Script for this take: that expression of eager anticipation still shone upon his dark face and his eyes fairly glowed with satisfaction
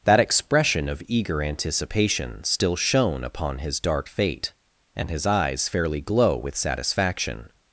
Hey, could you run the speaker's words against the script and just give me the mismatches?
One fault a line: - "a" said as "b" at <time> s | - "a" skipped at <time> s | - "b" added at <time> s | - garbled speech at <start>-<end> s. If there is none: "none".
- "face" said as "fate" at 4.1 s
- "glowed" said as "glow" at 6.0 s